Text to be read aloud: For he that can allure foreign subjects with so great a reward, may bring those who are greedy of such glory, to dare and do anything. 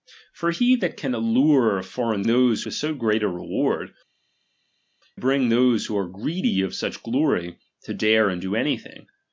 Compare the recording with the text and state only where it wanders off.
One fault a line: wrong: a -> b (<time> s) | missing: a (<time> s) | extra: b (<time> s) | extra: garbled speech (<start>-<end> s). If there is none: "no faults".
wrong: subjects -> those (2.3 s)
missing: may (3.9 s)